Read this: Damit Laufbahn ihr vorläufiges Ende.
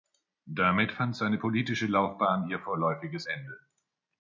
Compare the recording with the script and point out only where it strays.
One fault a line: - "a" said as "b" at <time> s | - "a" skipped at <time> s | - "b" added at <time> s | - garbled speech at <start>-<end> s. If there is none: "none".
- "fand seine politische" added at 0.9 s